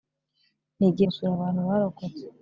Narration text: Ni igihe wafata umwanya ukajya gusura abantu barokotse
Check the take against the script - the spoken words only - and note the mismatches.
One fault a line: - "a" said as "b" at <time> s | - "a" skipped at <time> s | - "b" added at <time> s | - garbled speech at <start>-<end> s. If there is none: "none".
- "wafata umwanya ukajya" skipped at 1.1 s